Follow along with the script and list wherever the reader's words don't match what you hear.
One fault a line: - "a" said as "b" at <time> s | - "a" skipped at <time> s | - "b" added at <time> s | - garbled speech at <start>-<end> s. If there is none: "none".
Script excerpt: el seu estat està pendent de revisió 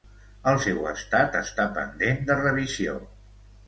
none